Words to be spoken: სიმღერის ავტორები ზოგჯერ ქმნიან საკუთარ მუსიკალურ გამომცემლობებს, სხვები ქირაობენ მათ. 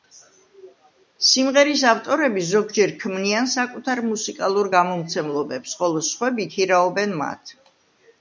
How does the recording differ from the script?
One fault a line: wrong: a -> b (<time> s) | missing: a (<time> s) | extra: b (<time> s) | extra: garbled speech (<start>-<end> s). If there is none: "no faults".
extra: ხოლო (5.8 s)